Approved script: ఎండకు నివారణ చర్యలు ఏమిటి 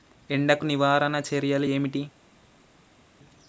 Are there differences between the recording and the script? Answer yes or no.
no